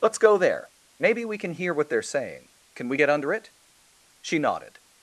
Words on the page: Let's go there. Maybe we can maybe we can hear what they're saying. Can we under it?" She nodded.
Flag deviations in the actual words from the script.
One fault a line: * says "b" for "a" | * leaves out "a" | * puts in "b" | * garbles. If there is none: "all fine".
* leaves out "maybe we can"
* puts in "get"